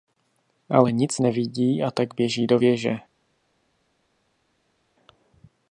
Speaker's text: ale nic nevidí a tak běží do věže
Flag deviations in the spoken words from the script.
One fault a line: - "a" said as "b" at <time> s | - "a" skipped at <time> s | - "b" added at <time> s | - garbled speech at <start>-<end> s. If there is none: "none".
none